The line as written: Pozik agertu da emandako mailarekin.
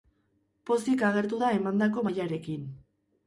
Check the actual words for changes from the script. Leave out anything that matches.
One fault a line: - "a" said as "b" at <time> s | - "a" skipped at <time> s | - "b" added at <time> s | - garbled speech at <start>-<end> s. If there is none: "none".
none